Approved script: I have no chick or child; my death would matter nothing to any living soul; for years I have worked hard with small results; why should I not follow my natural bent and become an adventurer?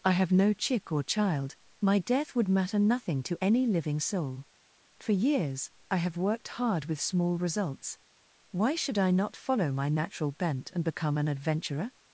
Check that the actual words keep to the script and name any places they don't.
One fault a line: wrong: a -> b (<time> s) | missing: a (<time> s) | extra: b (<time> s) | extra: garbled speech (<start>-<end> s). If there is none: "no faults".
no faults